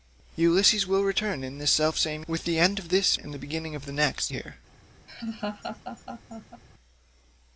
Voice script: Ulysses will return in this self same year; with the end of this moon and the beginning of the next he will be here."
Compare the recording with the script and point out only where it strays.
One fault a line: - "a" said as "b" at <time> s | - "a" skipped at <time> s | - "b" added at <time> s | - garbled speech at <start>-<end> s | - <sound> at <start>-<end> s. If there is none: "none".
- "year" skipped at 2.2 s
- "moon" skipped at 3.2 s
- "he will be" skipped at 4.3 s
- laugh at 5.1-6.6 s